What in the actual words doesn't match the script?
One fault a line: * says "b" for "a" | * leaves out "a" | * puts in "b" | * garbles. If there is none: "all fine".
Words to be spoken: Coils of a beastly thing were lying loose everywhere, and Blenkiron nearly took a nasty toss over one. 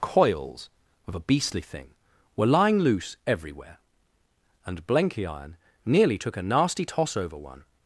all fine